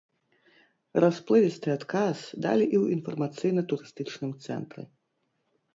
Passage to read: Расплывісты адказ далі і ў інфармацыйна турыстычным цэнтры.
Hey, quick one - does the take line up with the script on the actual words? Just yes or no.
yes